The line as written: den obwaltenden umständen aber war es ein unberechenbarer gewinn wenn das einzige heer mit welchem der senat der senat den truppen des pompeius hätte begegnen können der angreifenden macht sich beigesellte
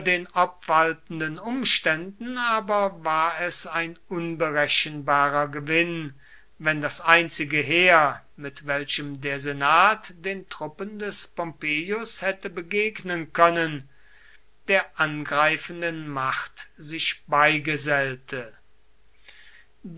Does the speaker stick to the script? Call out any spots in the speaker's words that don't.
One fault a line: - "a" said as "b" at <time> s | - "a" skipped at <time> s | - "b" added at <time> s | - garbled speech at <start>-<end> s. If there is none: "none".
- "der senat" skipped at 10.1 s